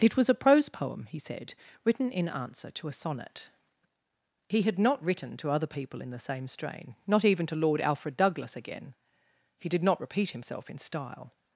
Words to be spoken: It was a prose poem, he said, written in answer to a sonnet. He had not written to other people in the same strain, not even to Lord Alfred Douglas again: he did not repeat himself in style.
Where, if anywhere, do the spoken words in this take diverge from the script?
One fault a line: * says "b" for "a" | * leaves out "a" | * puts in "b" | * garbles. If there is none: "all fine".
all fine